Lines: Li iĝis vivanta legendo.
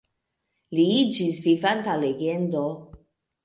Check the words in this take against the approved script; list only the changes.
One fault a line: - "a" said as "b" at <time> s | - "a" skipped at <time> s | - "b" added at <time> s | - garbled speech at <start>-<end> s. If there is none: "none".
none